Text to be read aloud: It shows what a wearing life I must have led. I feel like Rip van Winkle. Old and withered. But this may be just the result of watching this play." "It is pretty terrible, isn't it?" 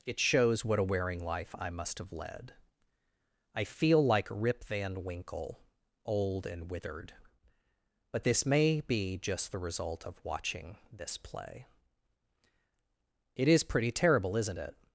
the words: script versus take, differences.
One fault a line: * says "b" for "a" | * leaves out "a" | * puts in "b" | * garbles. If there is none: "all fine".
all fine